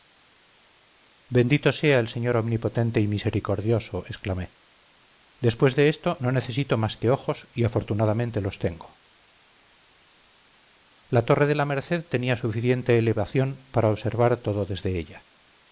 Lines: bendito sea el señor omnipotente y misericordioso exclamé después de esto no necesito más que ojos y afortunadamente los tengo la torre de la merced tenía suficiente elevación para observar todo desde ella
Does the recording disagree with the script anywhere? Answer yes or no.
no